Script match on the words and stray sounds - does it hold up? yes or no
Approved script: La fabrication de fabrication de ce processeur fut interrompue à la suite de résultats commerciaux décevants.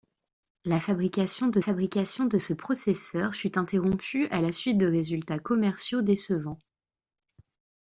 yes